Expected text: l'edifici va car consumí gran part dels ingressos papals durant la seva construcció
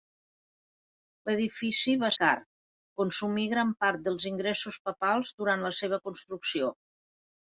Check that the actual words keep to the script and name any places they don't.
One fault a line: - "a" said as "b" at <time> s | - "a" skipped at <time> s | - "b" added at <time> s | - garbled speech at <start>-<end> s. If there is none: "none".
none